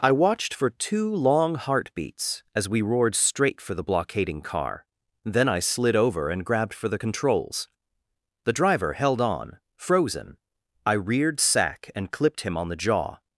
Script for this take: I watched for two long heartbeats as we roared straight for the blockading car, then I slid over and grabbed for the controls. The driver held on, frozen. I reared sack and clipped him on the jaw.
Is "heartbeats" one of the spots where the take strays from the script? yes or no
no